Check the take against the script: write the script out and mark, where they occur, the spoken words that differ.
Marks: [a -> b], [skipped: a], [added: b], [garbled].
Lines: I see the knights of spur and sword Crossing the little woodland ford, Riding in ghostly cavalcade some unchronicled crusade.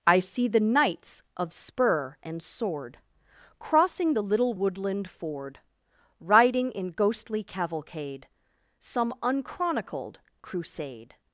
I see the knights of spur and sword Crossing the little woodland ford, Riding in ghostly cavalcade some unchronicled crusade.